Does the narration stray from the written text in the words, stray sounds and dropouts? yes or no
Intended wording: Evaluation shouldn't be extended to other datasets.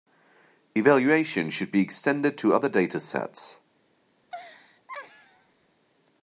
yes